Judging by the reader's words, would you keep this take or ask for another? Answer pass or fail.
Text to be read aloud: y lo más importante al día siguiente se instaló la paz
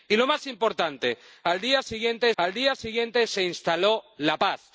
fail